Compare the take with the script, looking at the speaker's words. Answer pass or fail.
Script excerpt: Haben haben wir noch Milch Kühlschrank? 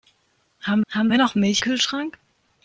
pass